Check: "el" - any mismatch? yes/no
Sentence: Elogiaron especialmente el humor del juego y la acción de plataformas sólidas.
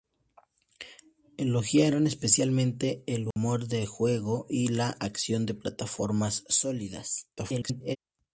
no